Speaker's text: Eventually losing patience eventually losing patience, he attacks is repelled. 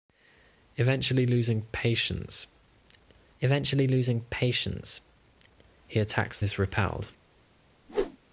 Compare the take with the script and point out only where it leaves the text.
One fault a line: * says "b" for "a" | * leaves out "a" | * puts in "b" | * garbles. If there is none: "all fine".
all fine